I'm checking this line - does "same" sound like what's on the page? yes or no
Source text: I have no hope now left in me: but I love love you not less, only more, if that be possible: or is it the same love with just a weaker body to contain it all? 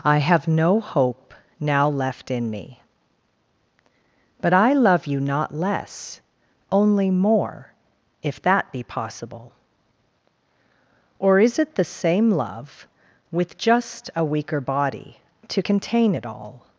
yes